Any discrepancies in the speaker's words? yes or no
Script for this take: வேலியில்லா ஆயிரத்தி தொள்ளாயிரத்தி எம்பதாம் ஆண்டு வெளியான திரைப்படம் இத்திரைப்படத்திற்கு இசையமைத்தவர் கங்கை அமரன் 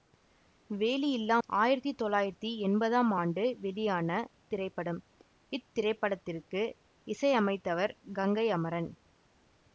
no